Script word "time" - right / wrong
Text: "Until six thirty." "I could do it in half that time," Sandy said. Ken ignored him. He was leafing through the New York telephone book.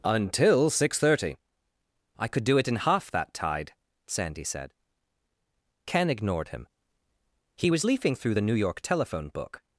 wrong